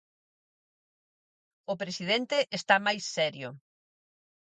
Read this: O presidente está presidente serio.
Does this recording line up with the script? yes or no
no